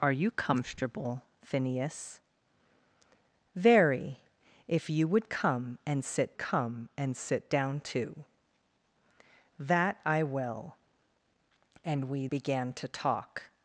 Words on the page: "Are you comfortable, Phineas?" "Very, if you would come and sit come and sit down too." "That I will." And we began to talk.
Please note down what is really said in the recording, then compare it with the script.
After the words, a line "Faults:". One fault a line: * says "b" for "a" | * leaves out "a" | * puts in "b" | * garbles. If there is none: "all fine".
"Are you comfortable, Phineas?" "Very, if you would come and sit come and sit down too." "That I will." And we began to talk.
Faults:
all fine